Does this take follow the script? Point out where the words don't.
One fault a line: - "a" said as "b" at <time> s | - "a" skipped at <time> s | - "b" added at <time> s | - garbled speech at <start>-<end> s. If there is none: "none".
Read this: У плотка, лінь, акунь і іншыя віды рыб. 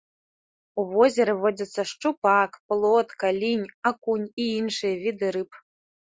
- "возеры водзяцца шчупак" added at 0.9 s